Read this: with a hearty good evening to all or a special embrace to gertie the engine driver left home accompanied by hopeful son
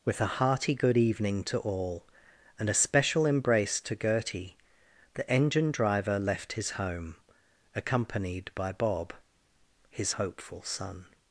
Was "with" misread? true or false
false